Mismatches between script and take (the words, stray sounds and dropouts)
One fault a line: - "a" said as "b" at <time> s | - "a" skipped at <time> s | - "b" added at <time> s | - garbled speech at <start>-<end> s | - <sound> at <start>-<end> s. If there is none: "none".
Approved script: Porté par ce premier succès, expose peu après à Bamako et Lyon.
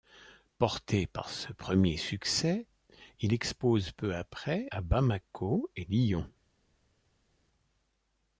- "il" added at 3.2 s